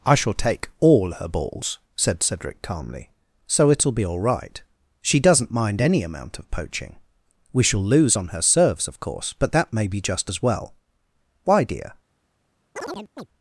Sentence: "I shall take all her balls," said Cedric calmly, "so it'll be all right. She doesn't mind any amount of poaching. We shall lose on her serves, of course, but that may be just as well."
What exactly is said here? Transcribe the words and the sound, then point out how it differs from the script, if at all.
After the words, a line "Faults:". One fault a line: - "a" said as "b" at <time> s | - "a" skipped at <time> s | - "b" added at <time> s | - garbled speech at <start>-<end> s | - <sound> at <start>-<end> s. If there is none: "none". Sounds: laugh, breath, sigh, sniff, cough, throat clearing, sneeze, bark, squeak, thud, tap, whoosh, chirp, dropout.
"I shall take all her balls," said Cedric calmly, "so it'll be all right. She doesn't mind any amount of poaching. We shall lose on her serves, of course, but that may be just as well." "Why, dear
Faults:
- "Why dear" added at 11.4 s
- chirp at 12.8-13.3 s